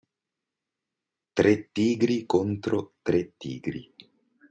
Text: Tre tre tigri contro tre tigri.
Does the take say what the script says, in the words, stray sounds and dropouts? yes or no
no